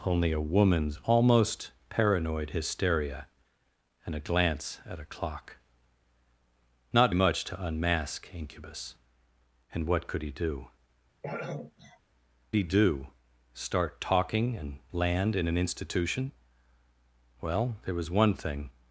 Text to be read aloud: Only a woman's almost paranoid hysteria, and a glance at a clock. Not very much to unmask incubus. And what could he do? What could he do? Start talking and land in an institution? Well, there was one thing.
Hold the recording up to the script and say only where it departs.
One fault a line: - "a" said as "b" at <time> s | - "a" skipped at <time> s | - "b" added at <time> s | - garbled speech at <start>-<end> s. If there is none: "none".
- "very" skipped at 7.1 s
- "What could" skipped at 10.7 s